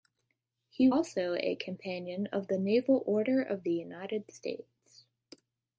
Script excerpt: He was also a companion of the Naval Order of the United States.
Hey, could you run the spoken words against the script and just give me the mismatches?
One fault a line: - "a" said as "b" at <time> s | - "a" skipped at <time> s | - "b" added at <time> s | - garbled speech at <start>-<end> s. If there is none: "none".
- "was" skipped at 0.9 s